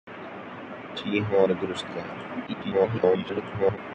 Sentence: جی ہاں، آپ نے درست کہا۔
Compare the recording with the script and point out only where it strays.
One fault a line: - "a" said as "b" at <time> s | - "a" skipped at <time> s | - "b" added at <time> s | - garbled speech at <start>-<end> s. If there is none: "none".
- "آپ" skipped at 1.5 s
- garbled speech at 2.5-3.8 s